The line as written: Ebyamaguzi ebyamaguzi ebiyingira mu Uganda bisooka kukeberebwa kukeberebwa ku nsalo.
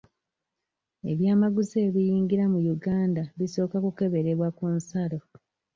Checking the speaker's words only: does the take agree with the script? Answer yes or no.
no